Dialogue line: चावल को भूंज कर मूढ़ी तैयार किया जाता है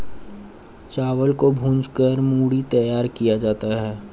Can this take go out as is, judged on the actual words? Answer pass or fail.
pass